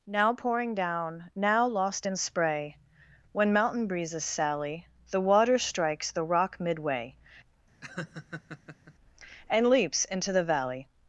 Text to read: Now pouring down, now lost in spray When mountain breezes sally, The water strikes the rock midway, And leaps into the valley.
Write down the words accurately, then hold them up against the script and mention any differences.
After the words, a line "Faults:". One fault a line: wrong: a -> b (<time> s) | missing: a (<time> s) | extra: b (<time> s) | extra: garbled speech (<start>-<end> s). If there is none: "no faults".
Now pouring down, now lost in spray When mountain breezes sally, The water strikes the rock midway, And leaps into the valley.
Faults:
no faults